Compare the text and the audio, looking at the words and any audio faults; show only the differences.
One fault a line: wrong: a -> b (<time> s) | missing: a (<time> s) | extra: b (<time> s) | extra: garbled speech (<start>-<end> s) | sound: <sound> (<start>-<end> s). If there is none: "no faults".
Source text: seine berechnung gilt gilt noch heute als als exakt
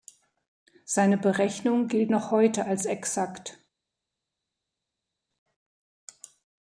missing: gilt (2.1 s)
missing: als (2.8 s)